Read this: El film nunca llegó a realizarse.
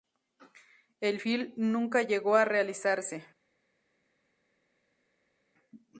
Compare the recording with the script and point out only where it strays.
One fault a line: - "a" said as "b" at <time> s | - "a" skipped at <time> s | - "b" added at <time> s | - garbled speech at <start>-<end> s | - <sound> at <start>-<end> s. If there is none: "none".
none